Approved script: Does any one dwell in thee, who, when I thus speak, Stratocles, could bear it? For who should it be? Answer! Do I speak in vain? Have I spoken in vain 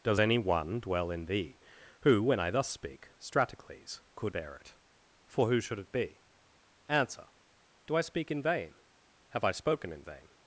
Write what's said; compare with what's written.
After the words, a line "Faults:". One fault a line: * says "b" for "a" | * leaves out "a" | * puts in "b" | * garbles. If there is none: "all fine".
Does any one dwell in thee, who, when I thus speak, Stratocles, could bear it? For who should it be? Answer! Do I speak in vain? Have I spoken in vain
Faults:
all fine